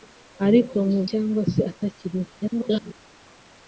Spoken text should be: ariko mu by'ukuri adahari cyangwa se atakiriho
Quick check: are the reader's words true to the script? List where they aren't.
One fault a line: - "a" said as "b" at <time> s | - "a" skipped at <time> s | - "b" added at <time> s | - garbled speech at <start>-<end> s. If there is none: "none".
- "by'ukuri adahari" skipped at 1.0 s
- garbled speech at 2.4-2.9 s